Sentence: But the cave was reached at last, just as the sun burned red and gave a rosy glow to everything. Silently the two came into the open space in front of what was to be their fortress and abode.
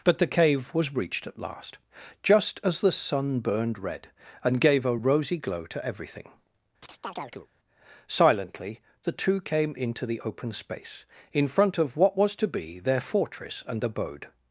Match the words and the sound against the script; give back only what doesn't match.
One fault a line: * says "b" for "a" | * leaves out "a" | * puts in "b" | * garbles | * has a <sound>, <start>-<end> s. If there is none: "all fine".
* has a chirp, 6.8-7.5 s